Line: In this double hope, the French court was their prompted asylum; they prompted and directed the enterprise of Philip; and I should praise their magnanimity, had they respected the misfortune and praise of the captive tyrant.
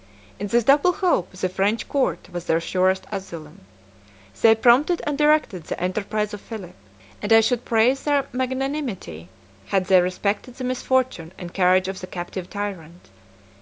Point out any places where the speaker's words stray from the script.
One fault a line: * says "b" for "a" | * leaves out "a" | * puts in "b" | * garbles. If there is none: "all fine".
* says "surest" for "prompted"
* says "courage" for "praise"